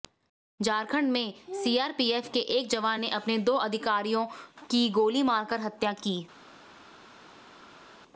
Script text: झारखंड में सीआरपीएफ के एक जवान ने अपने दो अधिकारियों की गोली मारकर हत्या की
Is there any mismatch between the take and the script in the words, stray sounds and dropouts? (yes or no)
no